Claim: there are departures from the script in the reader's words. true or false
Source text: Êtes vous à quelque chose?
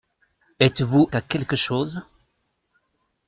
false